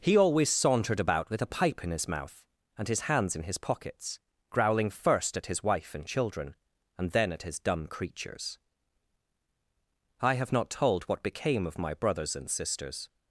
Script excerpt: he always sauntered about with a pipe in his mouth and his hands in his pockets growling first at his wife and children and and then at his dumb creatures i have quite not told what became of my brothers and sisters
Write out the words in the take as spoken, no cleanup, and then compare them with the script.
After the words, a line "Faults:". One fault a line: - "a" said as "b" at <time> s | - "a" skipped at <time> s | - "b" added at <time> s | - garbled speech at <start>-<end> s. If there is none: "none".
he always sauntered about with a pipe in his mouth and his hands in his pockets growling first at his wife and children and then at his dumb creatures i have not told what became of my brothers and sisters
Faults:
- "and" skipped at 7.1 s
- "quite" skipped at 10.5 s